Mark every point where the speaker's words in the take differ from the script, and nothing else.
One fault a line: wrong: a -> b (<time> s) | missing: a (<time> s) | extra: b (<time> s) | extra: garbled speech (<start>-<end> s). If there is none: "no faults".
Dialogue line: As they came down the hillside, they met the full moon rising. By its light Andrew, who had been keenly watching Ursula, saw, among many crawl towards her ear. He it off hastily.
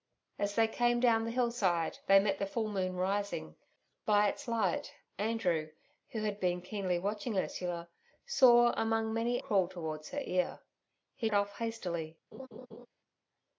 no faults